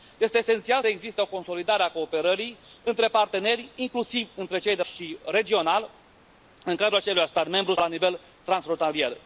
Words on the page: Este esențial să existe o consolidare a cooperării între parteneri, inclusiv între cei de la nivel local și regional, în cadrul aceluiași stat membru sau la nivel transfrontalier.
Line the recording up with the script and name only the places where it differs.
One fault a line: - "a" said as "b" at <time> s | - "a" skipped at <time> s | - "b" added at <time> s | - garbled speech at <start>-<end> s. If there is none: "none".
- "să" skipped at 0.8 s
- "la nivel local" skipped at 4.8 s
- "sau" skipped at 7.7 s